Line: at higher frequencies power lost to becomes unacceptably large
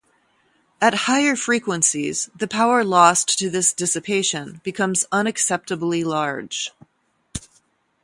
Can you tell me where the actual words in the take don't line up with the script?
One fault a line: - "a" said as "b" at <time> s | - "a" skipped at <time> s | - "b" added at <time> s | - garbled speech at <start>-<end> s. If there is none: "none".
- "the" added at 2.4 s
- "this dissipation" added at 3.5 s